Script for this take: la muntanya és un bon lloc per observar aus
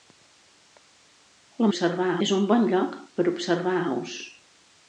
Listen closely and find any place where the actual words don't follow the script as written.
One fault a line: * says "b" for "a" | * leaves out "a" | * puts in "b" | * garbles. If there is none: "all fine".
* says "observar" for "muntanya"